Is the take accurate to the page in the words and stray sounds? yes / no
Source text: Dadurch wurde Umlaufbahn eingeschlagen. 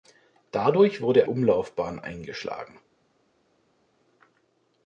yes